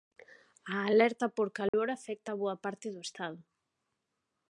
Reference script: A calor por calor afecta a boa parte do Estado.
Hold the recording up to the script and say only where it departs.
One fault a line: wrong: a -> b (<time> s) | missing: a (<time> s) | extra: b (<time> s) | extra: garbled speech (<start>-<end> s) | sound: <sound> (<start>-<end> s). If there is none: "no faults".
wrong: calor -> alerta (0.9 s)
sound: dropout (1.7-1.7 s)